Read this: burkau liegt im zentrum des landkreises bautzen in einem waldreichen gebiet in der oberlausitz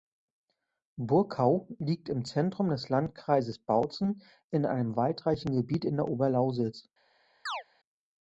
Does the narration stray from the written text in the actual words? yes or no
no